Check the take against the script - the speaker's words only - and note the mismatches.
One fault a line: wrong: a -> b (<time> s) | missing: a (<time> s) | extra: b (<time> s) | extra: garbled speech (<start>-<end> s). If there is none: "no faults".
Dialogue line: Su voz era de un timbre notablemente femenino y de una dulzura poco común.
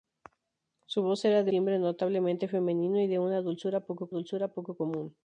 missing: un (1.5 s)
extra: dulzura poco (4.1 s)